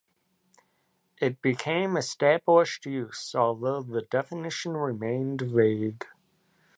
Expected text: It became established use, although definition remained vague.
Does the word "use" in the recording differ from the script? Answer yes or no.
no